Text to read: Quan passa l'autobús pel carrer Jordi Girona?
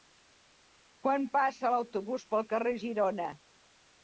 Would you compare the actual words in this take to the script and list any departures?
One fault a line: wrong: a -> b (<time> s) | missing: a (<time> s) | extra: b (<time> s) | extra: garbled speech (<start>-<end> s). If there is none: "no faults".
missing: Jordi (2.8 s)